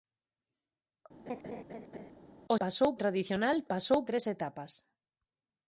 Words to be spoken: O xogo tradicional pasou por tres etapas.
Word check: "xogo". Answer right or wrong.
wrong